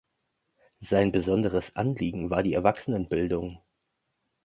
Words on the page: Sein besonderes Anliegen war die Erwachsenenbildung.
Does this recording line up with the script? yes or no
yes